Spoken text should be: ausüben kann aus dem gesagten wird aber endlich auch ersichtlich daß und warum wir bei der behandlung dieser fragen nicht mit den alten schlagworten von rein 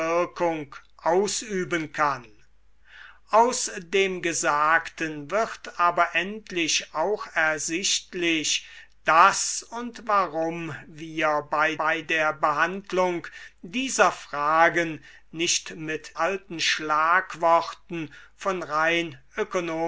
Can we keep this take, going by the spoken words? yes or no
no